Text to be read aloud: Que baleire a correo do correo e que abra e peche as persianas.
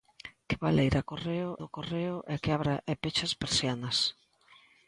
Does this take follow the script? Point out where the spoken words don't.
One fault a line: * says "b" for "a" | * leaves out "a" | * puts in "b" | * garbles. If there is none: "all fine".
all fine